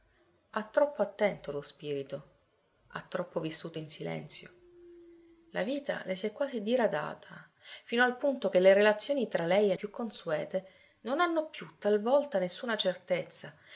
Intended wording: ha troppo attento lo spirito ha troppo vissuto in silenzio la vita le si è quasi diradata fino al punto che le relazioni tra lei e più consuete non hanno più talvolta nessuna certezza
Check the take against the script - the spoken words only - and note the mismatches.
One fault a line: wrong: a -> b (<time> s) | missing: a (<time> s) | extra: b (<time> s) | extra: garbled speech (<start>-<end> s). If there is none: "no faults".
no faults